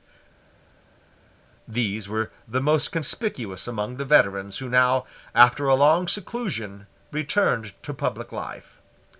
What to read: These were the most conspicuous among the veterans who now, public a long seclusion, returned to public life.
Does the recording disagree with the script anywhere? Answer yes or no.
yes